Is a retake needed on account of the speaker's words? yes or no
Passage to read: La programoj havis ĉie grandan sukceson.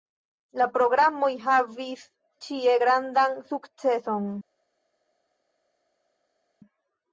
no